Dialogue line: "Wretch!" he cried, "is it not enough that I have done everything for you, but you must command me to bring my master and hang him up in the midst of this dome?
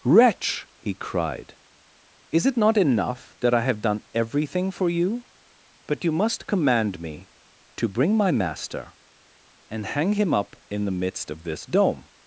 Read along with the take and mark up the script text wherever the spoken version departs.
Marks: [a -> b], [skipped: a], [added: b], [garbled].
"Wretch!" he cried, "is it not enough that I have done everything for you, but you must command me to bring my master and hang him up in the midst of this dome?